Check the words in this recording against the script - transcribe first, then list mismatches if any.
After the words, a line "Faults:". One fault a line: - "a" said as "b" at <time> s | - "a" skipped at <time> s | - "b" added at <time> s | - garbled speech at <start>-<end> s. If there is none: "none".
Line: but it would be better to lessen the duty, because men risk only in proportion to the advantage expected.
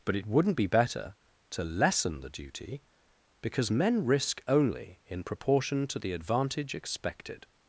but it wouldn't be better to lessen the duty, because men risk only in proportion to the advantage expected.
Faults:
- "would" said as "wouldn't" at 0.3 s